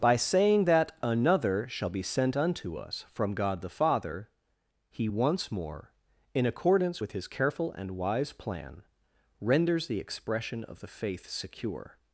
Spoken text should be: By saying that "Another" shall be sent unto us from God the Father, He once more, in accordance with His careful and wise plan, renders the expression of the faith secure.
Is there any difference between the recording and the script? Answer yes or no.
no